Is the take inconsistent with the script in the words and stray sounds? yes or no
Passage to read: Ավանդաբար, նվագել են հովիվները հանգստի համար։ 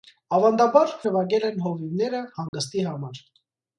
yes